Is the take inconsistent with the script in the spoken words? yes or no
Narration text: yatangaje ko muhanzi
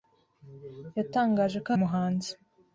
no